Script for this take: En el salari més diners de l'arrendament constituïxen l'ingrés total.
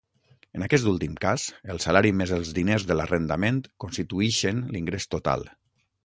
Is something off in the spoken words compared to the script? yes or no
yes